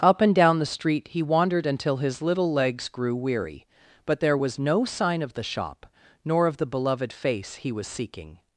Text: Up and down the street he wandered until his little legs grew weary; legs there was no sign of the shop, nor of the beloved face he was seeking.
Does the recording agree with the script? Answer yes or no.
no